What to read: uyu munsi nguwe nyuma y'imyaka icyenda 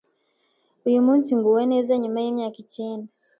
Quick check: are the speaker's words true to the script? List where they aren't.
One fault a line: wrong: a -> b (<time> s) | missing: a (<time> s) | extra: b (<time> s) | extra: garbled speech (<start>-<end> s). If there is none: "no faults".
extra: neza (1.7 s)